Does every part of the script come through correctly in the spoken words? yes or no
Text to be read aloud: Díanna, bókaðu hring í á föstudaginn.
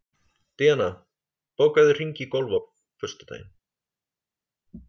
no